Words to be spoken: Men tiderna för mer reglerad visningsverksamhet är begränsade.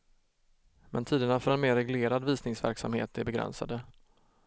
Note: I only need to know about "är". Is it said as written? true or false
true